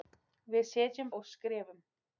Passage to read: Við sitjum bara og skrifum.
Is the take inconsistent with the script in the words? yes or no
yes